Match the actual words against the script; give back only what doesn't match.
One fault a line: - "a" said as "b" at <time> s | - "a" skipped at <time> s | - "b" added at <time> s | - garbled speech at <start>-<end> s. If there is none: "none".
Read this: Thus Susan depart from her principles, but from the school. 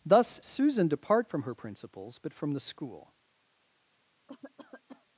none